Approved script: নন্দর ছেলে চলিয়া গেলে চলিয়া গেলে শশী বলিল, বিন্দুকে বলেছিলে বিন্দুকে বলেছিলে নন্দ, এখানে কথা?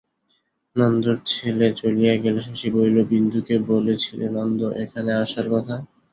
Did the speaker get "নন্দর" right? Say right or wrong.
right